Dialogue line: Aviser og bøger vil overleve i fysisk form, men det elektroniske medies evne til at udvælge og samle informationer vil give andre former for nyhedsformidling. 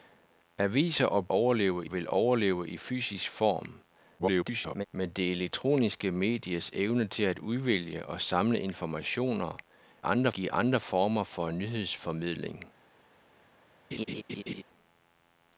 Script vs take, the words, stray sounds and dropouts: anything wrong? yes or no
yes